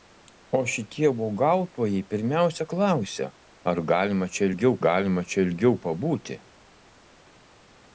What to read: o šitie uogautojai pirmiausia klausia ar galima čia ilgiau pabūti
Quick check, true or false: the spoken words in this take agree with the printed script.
false